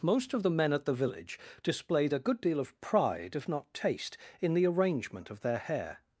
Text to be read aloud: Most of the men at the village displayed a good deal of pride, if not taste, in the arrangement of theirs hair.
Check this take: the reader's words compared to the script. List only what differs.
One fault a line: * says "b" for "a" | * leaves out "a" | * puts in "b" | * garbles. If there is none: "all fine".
* says "their" for "theirs"